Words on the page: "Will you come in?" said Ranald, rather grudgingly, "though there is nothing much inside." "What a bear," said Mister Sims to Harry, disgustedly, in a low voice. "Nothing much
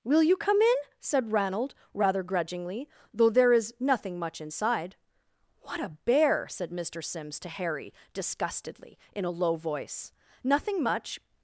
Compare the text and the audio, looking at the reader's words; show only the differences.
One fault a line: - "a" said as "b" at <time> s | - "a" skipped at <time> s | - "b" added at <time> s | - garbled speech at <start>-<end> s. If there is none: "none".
none